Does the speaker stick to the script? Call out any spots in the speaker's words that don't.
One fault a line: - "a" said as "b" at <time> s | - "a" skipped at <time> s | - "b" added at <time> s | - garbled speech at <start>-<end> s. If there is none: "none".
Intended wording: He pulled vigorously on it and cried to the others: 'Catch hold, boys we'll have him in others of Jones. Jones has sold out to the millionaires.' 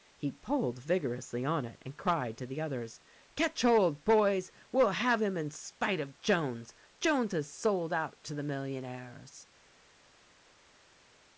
- "others" said as "spite" at 5.5 s